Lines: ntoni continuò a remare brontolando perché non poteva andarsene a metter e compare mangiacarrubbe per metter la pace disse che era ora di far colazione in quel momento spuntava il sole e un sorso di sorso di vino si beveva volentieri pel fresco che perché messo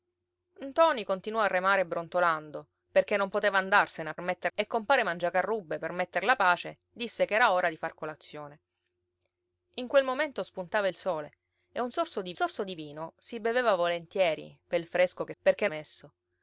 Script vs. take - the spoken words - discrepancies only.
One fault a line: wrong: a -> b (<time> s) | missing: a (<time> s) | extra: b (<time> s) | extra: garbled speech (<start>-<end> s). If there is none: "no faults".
no faults